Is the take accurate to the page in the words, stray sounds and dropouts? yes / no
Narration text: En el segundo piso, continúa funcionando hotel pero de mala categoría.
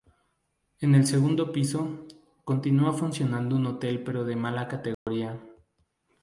no